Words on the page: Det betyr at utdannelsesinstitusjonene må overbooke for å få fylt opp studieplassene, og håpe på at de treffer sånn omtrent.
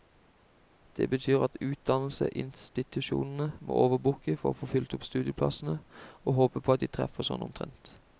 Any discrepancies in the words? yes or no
no